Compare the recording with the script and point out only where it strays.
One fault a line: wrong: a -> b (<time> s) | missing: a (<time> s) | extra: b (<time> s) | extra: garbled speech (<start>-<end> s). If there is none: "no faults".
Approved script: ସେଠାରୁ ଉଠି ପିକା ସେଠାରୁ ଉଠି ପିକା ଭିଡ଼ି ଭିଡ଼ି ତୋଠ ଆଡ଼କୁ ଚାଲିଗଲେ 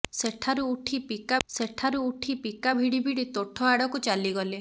no faults